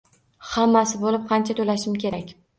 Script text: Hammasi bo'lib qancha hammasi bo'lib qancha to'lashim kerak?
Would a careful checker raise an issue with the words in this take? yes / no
yes